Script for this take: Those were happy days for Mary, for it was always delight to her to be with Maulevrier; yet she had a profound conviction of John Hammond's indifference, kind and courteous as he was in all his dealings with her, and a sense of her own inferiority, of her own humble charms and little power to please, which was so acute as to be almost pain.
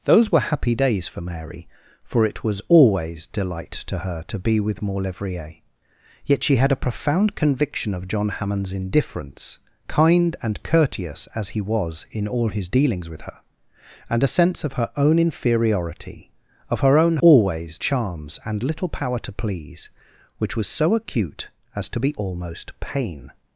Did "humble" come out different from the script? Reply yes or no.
yes